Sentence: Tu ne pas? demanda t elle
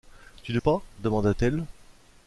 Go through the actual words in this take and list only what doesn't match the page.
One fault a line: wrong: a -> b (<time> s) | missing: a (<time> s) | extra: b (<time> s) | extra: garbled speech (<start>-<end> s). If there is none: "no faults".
no faults